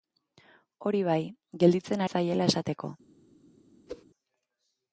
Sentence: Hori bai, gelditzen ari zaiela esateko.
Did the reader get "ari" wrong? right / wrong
wrong